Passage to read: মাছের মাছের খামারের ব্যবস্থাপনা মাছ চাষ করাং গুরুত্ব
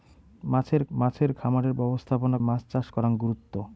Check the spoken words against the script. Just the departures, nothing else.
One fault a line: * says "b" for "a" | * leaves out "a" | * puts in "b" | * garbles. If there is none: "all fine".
all fine